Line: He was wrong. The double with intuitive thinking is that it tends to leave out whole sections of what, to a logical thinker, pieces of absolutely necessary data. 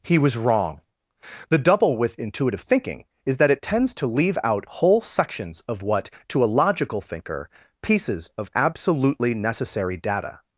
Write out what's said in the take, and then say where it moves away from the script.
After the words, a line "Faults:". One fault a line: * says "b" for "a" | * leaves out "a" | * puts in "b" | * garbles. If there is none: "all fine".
He was wrong. The double with intuitive thinking is that it tends to leave out whole sections of what, to a logical thinker, pieces of absolutely necessary data.
Faults:
all fine